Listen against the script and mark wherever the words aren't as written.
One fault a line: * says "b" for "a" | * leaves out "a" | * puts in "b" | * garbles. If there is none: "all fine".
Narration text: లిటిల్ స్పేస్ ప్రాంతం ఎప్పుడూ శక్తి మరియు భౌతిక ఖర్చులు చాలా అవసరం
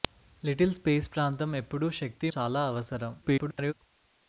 * leaves out "మరియు భౌతిక ఖర్చులు"
* garbles